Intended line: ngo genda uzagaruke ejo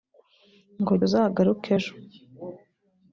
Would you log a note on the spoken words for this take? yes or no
yes